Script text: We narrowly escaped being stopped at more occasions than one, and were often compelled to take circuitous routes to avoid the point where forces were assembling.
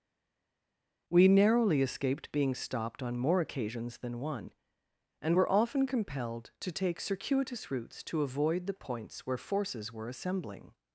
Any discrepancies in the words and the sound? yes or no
yes